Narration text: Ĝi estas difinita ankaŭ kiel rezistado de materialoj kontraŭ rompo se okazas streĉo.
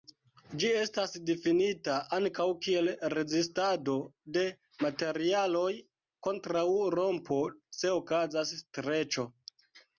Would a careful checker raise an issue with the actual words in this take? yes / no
no